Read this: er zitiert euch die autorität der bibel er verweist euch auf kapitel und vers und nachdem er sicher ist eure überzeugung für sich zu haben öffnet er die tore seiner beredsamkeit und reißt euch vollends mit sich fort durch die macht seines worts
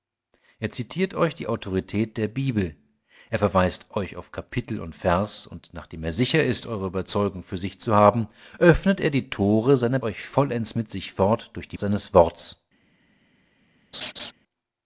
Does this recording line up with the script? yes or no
no